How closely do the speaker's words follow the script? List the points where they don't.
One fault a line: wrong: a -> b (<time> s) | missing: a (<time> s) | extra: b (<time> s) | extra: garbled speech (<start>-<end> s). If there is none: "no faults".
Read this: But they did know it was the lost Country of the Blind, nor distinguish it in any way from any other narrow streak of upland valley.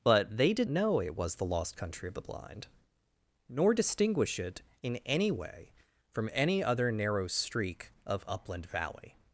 no faults